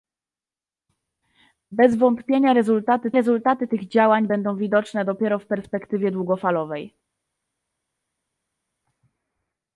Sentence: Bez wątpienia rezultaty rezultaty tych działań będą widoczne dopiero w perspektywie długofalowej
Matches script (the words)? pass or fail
pass